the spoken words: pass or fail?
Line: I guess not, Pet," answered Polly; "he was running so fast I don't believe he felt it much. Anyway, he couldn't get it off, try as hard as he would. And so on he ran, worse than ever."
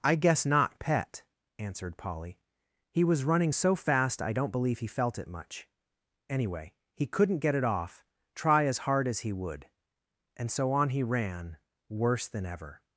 pass